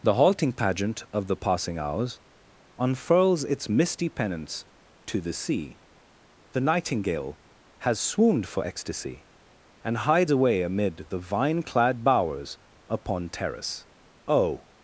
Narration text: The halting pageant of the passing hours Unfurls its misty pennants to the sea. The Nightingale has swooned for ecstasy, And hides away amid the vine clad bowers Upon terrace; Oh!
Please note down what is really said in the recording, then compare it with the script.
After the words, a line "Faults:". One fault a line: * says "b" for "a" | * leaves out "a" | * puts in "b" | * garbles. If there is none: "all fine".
The halting pageant of the passing hours Unfurls its misty pennants to the sea. The Nightingale has swooned for ecstasy, And hides away amid the vine clad bowers Upon terrace; Oh!
Faults:
all fine